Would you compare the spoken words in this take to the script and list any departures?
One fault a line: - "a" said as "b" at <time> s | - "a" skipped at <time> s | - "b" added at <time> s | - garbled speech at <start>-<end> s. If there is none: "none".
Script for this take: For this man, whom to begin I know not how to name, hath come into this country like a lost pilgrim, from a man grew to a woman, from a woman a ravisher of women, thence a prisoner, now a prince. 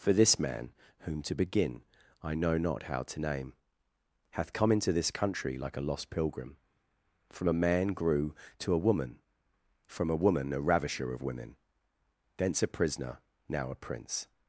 none